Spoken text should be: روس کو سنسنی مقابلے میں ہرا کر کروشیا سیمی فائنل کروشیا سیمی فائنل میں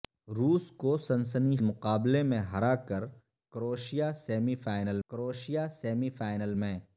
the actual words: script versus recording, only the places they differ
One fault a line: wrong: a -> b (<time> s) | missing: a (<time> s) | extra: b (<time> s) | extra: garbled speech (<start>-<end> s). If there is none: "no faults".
no faults